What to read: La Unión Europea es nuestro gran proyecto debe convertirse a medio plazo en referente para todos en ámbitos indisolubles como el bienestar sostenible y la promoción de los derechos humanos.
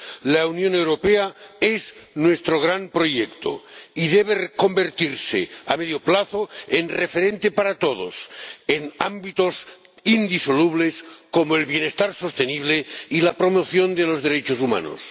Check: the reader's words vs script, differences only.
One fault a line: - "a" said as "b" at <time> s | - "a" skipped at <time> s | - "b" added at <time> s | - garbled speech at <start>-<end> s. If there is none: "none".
- "y" added at 3.9 s